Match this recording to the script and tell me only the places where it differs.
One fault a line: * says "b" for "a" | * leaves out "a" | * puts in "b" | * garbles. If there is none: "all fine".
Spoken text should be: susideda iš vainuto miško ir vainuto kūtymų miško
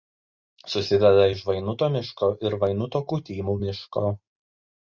all fine